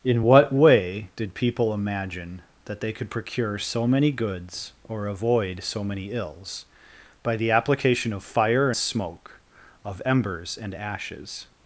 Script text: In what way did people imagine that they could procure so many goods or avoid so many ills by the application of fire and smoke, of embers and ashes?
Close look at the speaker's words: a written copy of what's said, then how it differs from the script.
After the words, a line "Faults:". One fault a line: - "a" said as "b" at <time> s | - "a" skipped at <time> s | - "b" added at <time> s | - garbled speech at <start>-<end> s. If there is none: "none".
In what way did people imagine that they could procure so many goods or avoid so many ills by the application of fire smoke, of embers and ashes?
Faults:
- "and" skipped at 8.7 s